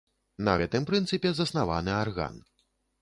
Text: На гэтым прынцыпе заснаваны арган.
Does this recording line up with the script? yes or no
yes